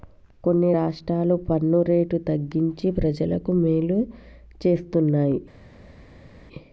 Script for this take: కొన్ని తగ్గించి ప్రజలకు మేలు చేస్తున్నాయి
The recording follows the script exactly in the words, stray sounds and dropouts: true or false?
false